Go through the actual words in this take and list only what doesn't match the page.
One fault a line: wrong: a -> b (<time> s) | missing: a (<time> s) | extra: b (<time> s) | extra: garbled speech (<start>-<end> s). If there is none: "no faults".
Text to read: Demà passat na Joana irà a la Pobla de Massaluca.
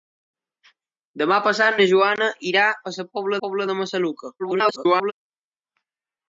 extra: Pobla (3.4 s)
extra: garbled speech (4.4-5.1 s)